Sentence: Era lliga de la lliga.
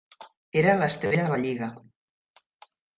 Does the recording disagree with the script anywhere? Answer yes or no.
yes